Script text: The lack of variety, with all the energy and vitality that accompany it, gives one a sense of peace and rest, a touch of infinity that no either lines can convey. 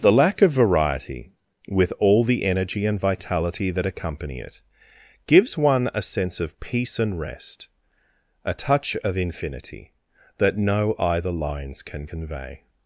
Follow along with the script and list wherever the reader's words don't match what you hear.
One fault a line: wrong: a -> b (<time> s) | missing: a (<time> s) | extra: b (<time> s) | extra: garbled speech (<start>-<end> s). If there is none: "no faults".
no faults